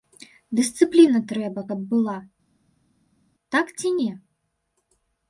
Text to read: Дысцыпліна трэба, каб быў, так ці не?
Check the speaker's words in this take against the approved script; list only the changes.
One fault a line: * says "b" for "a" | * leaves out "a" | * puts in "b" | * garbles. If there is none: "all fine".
* says "была" for "быў"